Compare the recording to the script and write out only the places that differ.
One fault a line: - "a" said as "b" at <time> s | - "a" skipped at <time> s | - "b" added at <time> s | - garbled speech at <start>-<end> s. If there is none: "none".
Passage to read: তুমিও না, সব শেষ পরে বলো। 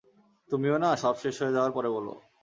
- "হয়ে যাওয়ার" added at 1.4 s